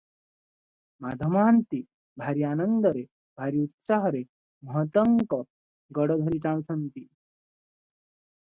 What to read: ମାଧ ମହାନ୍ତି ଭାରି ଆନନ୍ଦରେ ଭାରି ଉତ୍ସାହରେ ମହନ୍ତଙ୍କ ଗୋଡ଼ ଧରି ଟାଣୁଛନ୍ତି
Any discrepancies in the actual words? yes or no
no